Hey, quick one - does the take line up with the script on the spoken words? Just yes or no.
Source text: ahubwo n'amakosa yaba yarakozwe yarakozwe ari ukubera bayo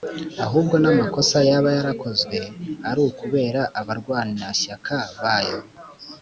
no